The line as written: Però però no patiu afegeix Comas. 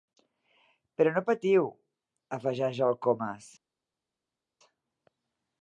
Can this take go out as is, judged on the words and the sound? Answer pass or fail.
fail